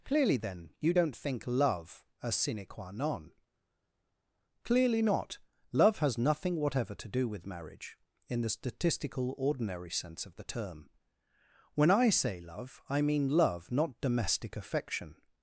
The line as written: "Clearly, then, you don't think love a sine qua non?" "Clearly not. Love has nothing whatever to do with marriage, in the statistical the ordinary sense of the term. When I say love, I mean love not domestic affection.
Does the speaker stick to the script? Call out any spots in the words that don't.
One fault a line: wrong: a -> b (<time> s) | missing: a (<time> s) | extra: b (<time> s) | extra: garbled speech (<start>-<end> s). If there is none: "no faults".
missing: the (9.3 s)